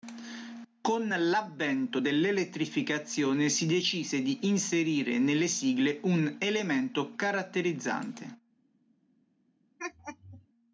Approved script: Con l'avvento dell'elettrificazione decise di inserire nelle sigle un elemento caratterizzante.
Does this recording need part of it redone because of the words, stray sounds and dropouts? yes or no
yes